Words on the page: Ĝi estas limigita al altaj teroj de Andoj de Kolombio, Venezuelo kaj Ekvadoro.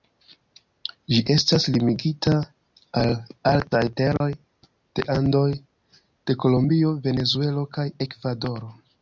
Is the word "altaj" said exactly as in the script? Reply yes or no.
yes